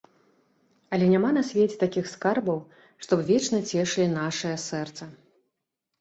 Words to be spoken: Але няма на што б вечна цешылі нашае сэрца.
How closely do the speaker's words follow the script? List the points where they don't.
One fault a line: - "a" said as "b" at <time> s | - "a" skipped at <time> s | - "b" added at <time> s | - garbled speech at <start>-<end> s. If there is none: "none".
- "свеце такіх скарбаў" added at 1.5 s